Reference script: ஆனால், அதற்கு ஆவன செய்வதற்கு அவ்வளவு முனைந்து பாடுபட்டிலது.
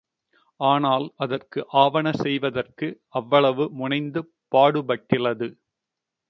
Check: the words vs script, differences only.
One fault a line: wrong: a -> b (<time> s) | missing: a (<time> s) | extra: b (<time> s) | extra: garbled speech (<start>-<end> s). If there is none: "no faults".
no faults